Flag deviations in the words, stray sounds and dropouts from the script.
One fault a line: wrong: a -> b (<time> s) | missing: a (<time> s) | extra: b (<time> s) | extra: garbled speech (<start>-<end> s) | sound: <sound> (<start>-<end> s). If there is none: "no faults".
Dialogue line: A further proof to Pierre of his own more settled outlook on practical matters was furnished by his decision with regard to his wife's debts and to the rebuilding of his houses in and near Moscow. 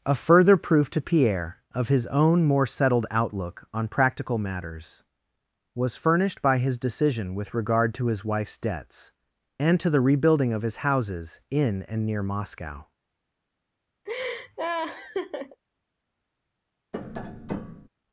sound: laugh (14.1-15.6 s)
sound: tap (16.9-17.9 s)